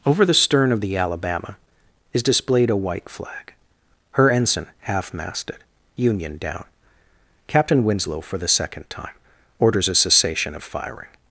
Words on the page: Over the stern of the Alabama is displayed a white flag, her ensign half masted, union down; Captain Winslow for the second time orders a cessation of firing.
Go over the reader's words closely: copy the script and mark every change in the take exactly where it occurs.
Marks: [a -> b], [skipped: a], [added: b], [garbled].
Over the stern of the Alabama is displayed a white flag, her ensign half masted, union down; Captain Winslow for the second time orders a cessation of firing.